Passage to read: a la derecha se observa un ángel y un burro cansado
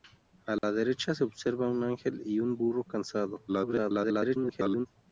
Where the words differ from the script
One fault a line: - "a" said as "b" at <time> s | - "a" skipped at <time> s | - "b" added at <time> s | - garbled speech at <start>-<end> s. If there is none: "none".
- garbled speech at 3.5-4.9 s